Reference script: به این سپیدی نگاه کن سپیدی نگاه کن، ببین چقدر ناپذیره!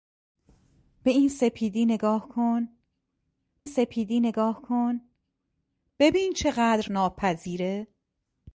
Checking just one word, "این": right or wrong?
right